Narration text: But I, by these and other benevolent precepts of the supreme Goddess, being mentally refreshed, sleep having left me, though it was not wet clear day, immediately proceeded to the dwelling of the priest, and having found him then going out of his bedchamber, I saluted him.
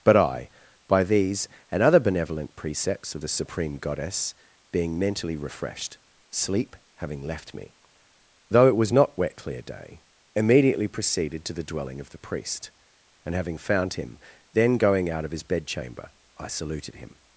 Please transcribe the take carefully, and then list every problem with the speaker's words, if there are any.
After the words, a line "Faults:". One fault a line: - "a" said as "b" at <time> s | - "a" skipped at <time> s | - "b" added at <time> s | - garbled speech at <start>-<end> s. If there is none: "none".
But I, by these and other benevolent precepts of the supreme Goddess, being mentally refreshed, sleep having left me, though it was not wet clear day, immediately proceeded to the dwelling of the priest, and having found him then going out of his bedchamber, I saluted him.
Faults:
none